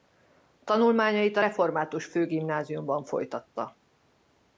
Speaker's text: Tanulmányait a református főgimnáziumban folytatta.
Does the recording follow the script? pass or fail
pass